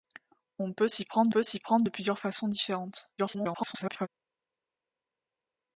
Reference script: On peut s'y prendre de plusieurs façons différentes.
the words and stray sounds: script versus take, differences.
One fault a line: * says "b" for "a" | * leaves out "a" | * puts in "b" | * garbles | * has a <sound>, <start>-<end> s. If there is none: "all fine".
* puts in "peut s'y prendre"
* garbles